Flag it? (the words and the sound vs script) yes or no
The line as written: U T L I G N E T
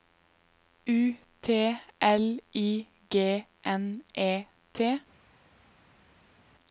no